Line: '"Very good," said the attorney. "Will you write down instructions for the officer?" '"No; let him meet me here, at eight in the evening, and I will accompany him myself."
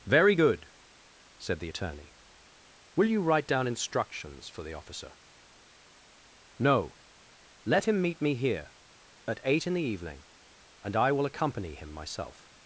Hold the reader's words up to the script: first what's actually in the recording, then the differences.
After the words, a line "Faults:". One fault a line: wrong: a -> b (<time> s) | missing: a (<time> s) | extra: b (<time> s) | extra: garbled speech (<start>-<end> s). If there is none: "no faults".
'"Very good," said the attorney. "Will you write down instructions for the officer?" '"No; let him meet me here, at eight in the evening, and I will accompany him myself."
Faults:
no faults